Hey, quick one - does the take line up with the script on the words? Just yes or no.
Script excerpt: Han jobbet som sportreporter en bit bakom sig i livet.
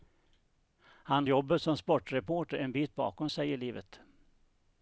yes